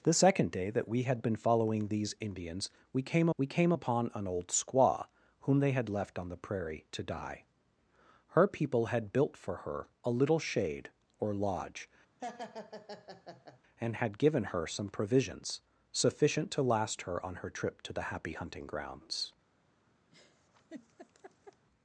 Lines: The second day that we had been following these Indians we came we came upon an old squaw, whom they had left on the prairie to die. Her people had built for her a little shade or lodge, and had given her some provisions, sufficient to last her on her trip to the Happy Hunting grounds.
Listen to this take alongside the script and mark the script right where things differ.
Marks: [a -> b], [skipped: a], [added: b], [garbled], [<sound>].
The second day that we had been following these Indians we came we came upon an old squaw, whom they had left on the prairie to die. Her people had built for her a little shade or lodge, [laugh] and had given her some provisions, sufficient to last her on her trip to the Happy Hunting grounds. [laugh]